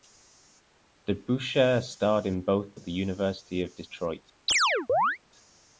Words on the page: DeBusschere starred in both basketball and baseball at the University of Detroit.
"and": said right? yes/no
no